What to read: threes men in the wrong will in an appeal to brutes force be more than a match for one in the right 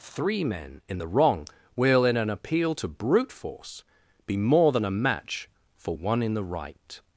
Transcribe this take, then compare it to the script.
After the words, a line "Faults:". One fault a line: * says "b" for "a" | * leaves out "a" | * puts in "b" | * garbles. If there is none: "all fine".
three men in the wrong will in an appeal to brute force be more than a match for one in the right
Faults:
* says "three" for "threes"
* says "brute" for "brutes"